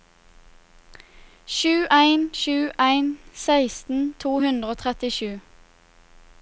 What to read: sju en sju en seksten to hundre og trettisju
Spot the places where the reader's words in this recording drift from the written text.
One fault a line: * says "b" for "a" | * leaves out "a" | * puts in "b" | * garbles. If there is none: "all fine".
all fine